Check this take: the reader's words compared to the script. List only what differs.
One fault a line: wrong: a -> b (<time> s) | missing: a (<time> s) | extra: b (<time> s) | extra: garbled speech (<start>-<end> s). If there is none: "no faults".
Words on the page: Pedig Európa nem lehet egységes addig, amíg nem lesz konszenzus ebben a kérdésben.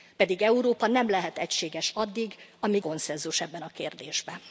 missing: nem lesz (2.8 s)